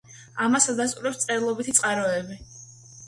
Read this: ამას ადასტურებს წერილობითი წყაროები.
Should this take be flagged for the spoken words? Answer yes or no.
no